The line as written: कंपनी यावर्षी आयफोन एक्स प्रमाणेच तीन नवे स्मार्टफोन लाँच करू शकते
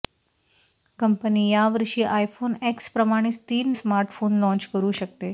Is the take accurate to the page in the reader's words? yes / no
no